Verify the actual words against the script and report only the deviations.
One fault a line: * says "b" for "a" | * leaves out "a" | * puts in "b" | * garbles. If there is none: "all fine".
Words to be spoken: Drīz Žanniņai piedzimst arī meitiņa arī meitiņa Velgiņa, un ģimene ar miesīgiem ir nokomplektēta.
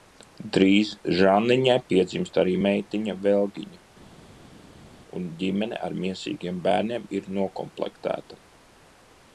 * leaves out "arī meitiņa"
* puts in "bērniem"